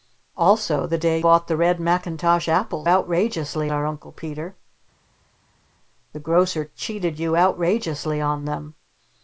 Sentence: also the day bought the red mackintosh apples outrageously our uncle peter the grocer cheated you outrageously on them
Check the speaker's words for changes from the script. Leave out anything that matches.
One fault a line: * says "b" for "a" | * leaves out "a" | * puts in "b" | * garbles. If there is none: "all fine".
all fine